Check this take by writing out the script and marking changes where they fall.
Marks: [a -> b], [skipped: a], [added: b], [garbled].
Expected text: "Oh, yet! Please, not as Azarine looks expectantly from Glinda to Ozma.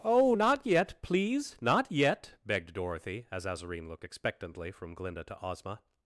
"Oh, [added: not] yet! Please, not [added: yet begged Dorothy] as Azarine [looks -> looked] expectantly from Glinda to Ozma.